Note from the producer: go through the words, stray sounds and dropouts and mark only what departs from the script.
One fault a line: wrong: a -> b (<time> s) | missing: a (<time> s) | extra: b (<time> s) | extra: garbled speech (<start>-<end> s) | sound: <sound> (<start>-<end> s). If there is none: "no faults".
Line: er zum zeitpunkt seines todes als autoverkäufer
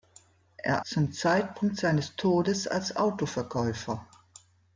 no faults